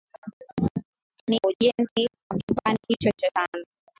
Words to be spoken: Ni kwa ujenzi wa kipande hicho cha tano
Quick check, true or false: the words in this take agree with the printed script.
true